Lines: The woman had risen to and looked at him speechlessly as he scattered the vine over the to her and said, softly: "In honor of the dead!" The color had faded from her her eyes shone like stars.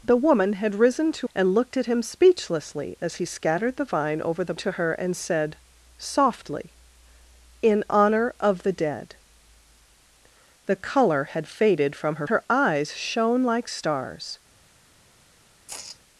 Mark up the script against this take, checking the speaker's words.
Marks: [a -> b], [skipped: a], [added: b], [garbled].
The woman had risen to and looked at him speechlessly as he scattered the vine over the to her and said, softly: "In honor of the dead!" The color had faded from her her eyes shone like stars.